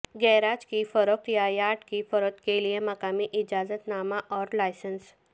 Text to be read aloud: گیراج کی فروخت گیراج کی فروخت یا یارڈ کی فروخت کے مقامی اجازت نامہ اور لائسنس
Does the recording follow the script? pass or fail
fail